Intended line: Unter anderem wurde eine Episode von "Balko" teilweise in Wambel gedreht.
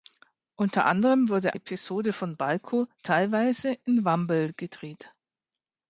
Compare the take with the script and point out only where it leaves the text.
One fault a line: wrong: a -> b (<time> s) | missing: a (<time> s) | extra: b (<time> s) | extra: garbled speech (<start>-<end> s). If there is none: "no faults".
missing: eine (1.6 s)